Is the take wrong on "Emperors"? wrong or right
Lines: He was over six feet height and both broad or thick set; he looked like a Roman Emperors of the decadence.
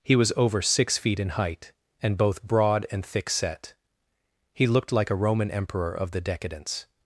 wrong